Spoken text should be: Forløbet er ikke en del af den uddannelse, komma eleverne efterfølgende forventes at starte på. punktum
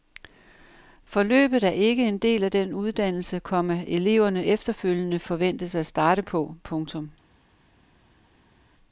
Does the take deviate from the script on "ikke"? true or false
false